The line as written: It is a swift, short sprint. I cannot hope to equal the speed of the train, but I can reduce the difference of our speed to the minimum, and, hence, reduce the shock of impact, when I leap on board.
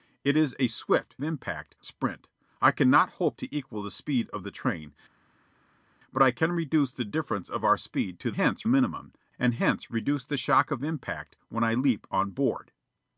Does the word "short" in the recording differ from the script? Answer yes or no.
yes